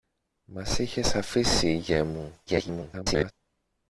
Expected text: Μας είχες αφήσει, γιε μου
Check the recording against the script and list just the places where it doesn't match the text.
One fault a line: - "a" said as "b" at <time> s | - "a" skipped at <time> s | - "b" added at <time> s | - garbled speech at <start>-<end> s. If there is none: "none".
- garbled speech at 2.5-3.3 s